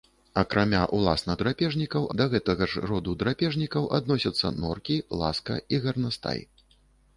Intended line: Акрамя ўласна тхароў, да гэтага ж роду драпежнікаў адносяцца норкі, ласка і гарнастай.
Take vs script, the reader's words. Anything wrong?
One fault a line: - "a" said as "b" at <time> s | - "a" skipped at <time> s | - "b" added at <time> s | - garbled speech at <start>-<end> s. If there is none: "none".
- "тхароў" said as "драпежнікаў" at 1.4 s